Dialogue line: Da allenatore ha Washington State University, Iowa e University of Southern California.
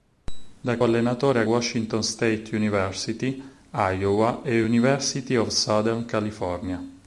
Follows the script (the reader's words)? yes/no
yes